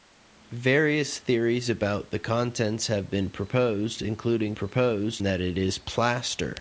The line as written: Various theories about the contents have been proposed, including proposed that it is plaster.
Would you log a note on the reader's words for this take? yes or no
no